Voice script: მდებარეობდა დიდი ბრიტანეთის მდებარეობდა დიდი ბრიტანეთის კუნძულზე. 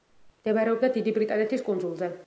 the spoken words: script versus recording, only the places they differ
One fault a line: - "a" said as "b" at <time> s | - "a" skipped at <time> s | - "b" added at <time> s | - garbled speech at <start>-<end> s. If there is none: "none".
- "მდებარეობდა დიდი ბრიტანეთის" skipped at 1.6 s